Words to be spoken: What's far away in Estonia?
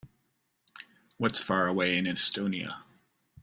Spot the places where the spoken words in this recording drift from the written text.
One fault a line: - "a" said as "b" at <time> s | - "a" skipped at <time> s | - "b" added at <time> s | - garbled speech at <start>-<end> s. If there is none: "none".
none